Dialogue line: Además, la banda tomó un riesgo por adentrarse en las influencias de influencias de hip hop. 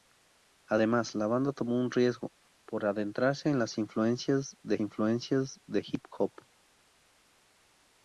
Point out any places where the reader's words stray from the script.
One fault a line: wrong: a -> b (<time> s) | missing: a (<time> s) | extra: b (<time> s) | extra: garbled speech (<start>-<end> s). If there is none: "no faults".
no faults